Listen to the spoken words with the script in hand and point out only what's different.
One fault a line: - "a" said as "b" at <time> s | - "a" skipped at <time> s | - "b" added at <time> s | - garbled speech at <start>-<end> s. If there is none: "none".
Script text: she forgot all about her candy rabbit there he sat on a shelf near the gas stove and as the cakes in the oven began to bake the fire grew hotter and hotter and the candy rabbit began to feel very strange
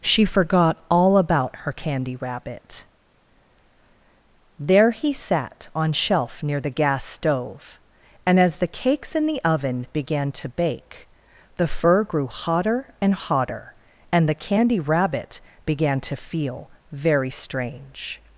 - "a" skipped at 5.9 s
- "fire" said as "fur" at 11.7 s